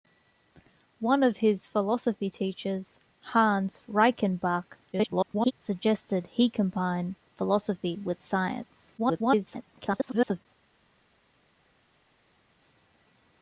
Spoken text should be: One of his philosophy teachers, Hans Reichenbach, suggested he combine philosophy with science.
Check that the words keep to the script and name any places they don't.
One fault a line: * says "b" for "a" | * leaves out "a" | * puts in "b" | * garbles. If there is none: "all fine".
* garbles
* garbles